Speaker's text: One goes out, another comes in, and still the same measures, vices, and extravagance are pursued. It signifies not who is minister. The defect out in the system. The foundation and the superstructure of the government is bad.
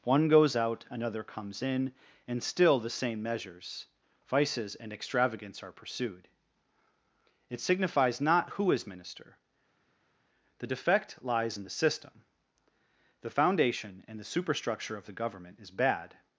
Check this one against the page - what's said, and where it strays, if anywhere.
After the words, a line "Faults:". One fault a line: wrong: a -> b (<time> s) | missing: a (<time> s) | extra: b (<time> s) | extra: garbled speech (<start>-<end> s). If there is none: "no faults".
One goes out, another comes in, and still the same measures, vices, and extravagance are pursued. It signifies not who is minister. The defect lies in the system. The foundation and the superstructure of the government is bad.
Faults:
wrong: out -> lies (11.2 s)